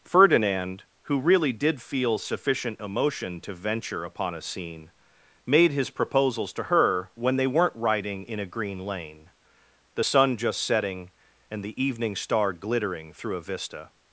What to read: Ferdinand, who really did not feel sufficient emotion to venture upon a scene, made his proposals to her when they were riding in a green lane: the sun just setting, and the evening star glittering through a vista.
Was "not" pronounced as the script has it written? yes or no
no